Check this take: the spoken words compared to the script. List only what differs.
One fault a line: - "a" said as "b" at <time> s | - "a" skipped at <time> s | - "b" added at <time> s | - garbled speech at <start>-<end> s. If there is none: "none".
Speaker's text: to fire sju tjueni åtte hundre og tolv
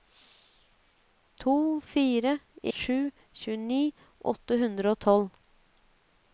none